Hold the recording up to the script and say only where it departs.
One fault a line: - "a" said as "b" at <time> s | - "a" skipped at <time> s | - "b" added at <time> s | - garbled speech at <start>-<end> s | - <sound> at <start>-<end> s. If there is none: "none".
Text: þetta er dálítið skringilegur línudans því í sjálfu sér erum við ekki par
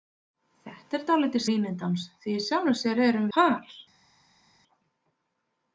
- "skringilegur" skipped at 1.4 s
- "við ekki" skipped at 3.3 s